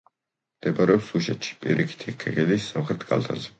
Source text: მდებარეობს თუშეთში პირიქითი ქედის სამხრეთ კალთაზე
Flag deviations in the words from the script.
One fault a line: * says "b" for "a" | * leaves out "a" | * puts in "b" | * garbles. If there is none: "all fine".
all fine